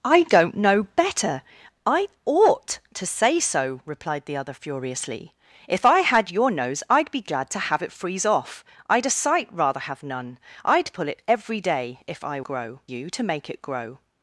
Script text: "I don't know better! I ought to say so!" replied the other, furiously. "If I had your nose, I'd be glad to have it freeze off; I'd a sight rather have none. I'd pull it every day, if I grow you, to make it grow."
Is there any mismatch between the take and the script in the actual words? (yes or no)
no